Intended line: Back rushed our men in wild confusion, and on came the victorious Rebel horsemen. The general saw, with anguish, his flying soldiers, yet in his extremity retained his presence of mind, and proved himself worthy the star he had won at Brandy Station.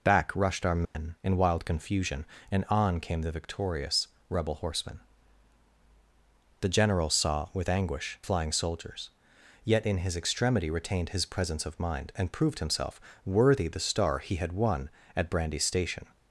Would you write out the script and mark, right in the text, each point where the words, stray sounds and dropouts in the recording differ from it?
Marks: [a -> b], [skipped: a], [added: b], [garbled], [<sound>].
Back rushed our men [dropout] in wild confusion, and on came the victorious Rebel horsemen. The general saw, with anguish, [skipped: his] flying soldiers, yet in his extremity retained his presence of mind, and proved himself worthy the star he had won at Brandy Station.